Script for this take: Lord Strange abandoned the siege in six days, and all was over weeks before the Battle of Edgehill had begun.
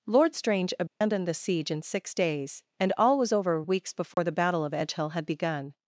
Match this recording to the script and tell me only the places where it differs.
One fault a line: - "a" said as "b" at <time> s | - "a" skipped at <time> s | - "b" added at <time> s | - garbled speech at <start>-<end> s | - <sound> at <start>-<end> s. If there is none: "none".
- dropout at 0.9-1.0 s
- dropout at 4.1-4.2 s